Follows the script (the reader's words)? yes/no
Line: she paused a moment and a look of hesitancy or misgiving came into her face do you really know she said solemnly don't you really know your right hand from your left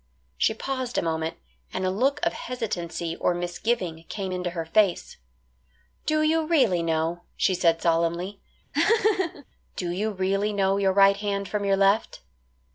no